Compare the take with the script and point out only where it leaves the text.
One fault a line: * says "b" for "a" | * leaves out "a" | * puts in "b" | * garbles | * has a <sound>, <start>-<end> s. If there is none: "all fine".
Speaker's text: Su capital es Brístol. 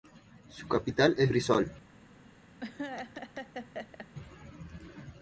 * has a laugh, 2.6-4.1 s